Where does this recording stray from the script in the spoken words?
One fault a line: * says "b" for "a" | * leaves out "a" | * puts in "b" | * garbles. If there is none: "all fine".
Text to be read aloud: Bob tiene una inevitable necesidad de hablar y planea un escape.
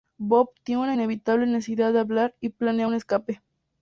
all fine